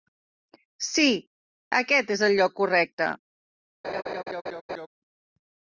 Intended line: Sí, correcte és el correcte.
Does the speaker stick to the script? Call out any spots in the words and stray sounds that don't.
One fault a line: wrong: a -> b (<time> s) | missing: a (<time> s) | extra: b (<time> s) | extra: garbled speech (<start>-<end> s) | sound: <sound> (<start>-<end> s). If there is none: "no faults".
wrong: correcte -> aquest (1.8 s)
extra: lloc (2.4 s)
sound: laugh (3.8-4.9 s)